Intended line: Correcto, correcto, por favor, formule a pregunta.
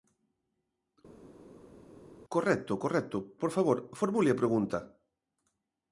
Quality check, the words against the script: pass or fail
pass